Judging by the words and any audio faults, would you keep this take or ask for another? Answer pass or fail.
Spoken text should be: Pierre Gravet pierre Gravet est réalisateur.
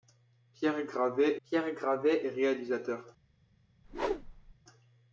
fail